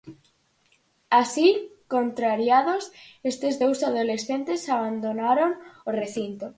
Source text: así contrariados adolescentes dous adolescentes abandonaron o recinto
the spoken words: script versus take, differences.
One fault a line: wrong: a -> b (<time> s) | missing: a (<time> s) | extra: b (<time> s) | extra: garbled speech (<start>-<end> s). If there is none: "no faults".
wrong: adolescentes -> estes (3.3 s)